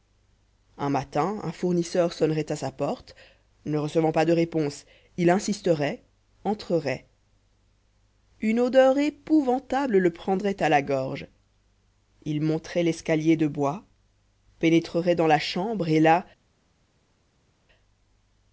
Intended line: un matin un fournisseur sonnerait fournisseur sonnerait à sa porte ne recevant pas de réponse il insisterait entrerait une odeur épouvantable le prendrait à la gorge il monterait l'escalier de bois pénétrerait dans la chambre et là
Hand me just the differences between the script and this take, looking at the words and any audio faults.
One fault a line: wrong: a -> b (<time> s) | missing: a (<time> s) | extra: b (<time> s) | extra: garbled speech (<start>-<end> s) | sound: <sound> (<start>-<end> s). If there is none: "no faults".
missing: fournisseur sonnerait (2.5 s)